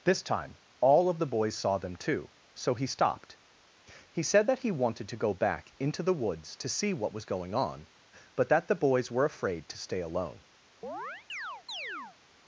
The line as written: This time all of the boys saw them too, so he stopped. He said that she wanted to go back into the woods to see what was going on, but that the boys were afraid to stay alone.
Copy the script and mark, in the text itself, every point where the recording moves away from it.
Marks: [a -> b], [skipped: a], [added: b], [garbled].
This time all of the boys saw them too, so he stopped. He said that [she -> he] wanted to go back into the woods to see what was going on, but that the boys were afraid to stay alone.